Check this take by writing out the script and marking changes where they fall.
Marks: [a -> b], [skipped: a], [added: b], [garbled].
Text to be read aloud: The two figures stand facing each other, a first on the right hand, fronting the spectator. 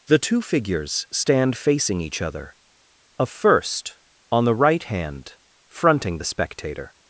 The two figures stand facing each other, a first on the right hand, fronting the spectator.